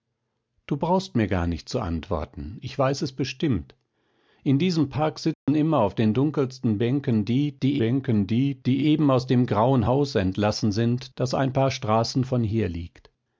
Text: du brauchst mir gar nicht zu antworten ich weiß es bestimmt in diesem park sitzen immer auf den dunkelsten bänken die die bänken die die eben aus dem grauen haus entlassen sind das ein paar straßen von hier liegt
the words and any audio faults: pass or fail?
fail